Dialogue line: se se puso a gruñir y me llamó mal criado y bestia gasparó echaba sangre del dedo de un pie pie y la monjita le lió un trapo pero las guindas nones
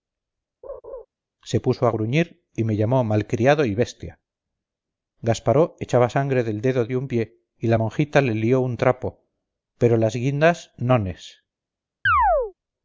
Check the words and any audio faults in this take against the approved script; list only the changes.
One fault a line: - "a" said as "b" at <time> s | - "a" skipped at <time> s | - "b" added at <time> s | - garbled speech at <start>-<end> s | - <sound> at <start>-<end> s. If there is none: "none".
- laugh at 0.6-1.1 s
- "se" skipped at 1.6 s
- "pie" skipped at 7.4 s
- chirp at 12.1-12.5 s